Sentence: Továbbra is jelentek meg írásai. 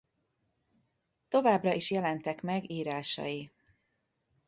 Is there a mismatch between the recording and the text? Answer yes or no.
no